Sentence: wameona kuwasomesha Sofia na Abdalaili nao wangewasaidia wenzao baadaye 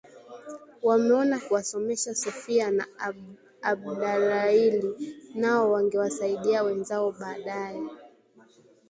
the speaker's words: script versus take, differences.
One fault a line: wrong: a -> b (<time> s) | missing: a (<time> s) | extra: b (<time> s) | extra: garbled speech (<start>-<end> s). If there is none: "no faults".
no faults